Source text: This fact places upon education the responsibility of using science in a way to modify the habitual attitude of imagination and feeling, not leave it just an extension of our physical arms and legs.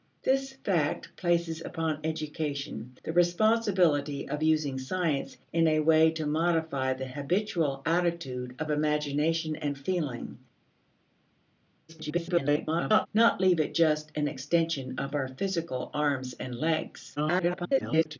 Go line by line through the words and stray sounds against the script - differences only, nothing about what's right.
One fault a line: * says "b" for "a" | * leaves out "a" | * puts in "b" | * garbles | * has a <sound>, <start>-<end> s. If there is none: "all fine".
* garbles
* garbles